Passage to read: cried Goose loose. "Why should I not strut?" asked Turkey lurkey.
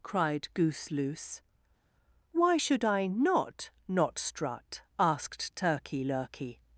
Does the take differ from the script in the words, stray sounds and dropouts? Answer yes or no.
yes